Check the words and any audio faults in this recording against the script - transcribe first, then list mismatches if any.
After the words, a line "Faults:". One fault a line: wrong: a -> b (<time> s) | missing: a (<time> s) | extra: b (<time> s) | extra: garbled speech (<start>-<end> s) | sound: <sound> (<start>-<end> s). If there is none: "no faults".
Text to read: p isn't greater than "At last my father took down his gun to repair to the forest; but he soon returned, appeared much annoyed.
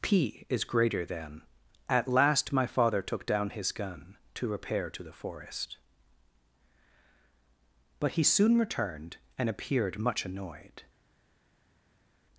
p is greater than "At last my father took down his gun to repair to the forest; but he soon returned, and appeared much annoyed.
Faults:
wrong: isn't -> is (0.5 s)
extra: and (9.4 s)